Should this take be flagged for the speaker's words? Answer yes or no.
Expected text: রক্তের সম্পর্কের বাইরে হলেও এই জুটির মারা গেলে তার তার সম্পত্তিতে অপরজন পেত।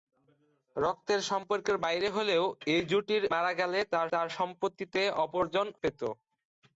no